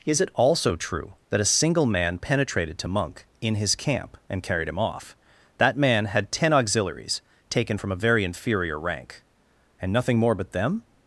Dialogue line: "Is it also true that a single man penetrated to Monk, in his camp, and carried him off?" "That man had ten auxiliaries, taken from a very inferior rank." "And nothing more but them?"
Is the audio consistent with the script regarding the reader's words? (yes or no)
yes